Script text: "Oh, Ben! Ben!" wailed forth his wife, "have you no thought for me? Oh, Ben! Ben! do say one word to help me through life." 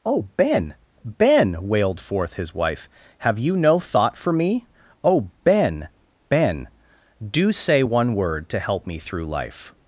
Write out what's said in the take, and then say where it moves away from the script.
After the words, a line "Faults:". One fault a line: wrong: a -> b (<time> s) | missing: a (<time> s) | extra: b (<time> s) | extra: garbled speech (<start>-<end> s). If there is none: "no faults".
"Oh, Ben! Ben!" wailed forth his wife, "have you no thought for me? Oh, Ben! Ben! do say one word to help me through life."
Faults:
no faults